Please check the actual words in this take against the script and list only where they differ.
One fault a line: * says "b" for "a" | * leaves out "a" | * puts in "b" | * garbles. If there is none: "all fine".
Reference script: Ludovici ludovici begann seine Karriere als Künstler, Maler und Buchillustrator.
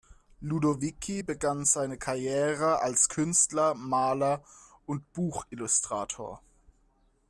* leaves out "ludovici"